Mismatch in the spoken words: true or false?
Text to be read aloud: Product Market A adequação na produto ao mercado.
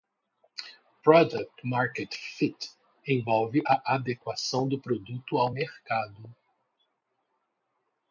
true